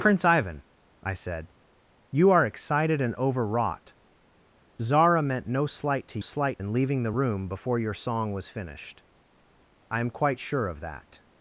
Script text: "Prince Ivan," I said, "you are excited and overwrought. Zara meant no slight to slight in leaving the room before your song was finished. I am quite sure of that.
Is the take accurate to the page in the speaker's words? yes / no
yes